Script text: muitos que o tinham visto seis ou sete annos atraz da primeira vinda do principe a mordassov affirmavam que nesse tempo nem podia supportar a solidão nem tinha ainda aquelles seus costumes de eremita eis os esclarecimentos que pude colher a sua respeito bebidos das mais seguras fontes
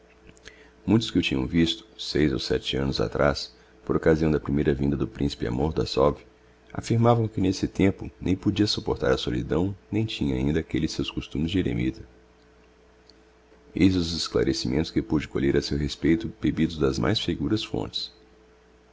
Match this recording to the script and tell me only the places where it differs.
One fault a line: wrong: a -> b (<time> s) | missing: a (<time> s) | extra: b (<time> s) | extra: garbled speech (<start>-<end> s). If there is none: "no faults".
extra: por occasião (3.8 s)
wrong: sua -> seu (15.6 s)